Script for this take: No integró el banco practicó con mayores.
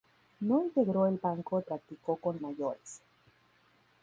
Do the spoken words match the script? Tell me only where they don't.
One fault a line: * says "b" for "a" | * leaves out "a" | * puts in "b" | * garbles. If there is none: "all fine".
all fine